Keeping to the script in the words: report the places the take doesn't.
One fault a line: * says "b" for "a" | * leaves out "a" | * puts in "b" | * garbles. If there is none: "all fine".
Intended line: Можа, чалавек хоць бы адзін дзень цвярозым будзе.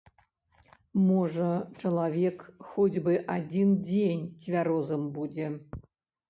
all fine